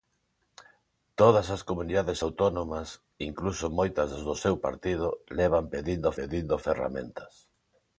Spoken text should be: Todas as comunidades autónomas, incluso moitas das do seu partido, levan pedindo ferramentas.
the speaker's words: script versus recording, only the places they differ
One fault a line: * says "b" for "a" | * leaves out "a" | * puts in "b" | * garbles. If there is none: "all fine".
* puts in "pedindo"